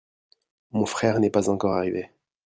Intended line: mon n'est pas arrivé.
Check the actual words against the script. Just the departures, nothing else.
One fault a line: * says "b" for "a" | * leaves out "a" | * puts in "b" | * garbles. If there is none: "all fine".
* puts in "frère"
* puts in "encore"